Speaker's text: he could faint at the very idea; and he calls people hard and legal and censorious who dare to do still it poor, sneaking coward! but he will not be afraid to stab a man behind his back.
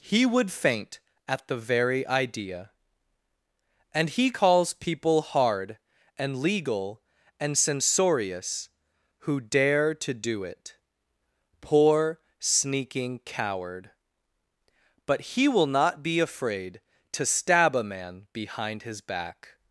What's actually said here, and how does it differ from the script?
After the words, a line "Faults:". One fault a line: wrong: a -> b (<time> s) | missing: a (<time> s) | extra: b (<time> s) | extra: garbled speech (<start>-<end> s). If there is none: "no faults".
he would faint at the very idea; and he calls people hard and legal and censorious who dare to do it poor, sneaking coward! but he will not be afraid to stab a man behind his back.
Faults:
wrong: could -> would (0.2 s)
missing: still (10.4 s)